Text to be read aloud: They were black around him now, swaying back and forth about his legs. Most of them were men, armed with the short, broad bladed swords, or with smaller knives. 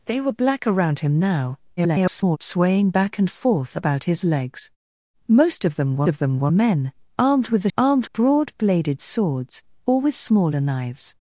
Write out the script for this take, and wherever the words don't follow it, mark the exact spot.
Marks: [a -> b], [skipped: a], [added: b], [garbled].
They were black around him now, [garbled] swaying back and forth about his legs. Most of them were [added: of them were] men, armed with the [short, -> armed] broad bladed swords, or with smaller knives.